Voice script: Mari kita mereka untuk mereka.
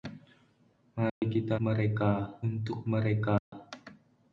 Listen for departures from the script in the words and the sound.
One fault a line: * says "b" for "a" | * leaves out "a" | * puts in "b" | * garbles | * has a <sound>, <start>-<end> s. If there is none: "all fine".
* has a dropout, 1.1-1.2 s
* has a dropout, 3.4-3.5 s